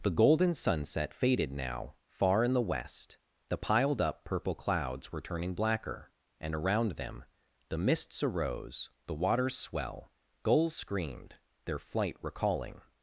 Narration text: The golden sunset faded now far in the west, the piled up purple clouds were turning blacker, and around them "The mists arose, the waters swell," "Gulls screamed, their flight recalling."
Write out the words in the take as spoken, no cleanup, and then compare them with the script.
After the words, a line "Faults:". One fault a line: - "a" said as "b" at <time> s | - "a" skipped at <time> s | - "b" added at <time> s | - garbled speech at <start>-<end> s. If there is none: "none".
The golden sunset faded now far in the west, the piled up purple clouds were turning blacker, and around them "The mists arose, the waters swell," "Gulls screamed, their flight recalling."
Faults:
none